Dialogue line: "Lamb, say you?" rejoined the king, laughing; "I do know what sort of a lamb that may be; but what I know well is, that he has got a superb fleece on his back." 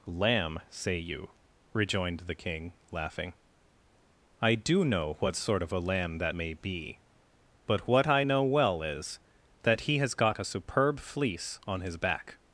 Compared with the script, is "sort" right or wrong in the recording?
right